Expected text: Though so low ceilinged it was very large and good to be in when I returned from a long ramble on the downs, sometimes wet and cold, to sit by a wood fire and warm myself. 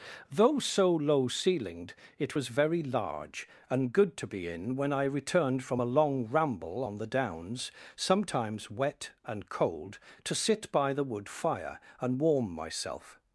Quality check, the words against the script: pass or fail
fail